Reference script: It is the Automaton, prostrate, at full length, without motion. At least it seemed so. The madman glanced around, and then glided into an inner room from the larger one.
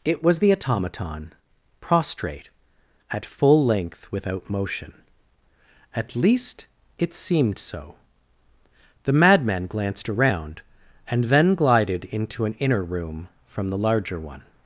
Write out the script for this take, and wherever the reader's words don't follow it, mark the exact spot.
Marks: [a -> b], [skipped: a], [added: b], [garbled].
It [is -> was] the Automaton, prostrate, at full length, without motion. At least it seemed so. The madman glanced around, and then glided into an inner room from the larger one.